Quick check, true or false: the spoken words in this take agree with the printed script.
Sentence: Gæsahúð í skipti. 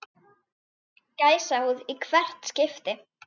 false